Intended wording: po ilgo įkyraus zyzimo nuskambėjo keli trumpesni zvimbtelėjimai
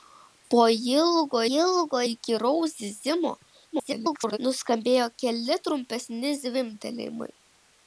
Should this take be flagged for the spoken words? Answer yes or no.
yes